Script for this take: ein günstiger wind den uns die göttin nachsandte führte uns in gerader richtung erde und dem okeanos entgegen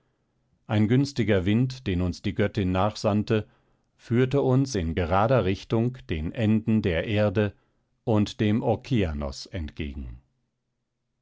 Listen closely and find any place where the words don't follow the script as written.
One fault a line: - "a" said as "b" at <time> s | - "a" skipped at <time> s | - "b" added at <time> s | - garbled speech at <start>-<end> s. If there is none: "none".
- "den enden der" added at 6.1 s